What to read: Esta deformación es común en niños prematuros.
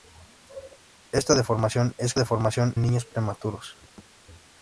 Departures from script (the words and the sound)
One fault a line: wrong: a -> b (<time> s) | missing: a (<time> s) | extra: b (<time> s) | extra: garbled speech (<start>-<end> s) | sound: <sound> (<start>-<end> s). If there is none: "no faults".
wrong: común -> deformación (2.2 s)
sound: thud (4.0-4.1 s)